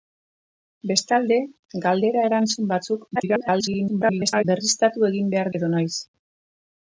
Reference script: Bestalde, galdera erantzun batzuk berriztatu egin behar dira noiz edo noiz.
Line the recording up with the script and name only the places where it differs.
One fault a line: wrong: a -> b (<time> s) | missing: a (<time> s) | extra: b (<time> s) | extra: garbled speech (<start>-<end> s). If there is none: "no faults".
extra: garbled speech (3.2-4.4 s)
missing: dira noiz (5.5 s)